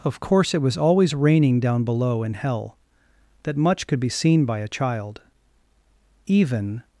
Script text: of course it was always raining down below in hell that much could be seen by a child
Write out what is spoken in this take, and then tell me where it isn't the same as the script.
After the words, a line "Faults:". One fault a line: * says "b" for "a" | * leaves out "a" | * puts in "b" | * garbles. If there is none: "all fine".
of course it was always raining down below in hell that much could be seen by a child even
Faults:
* puts in "even"